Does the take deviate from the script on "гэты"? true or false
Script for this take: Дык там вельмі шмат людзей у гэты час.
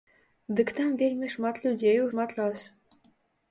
true